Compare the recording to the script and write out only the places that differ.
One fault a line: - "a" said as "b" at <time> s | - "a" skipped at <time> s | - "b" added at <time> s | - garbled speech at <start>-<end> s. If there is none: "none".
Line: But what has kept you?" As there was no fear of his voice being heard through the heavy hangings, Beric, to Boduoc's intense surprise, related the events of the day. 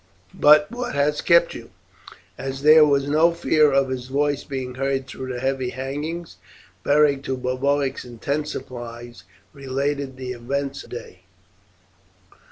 - "of the" skipped at 10.8 s